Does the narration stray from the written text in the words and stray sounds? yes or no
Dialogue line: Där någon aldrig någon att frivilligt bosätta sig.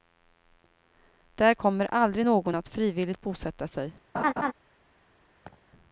yes